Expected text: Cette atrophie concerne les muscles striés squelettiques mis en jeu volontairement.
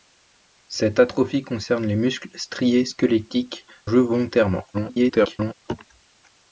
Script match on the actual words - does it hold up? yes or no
no